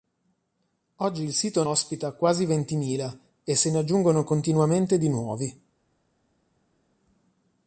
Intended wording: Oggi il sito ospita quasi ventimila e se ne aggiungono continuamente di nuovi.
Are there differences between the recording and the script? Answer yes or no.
no